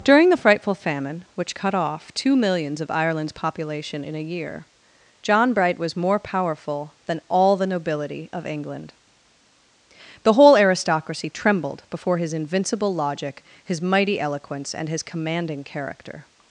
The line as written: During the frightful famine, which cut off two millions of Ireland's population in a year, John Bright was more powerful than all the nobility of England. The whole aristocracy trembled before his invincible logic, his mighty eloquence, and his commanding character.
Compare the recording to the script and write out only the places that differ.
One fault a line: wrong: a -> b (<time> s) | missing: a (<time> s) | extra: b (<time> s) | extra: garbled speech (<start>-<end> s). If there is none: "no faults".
no faults